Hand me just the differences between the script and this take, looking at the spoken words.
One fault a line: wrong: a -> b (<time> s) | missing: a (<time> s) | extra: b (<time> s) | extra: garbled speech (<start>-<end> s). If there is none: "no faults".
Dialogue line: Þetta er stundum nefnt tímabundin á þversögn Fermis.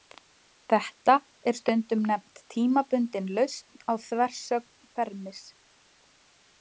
extra: lausn (3.4 s)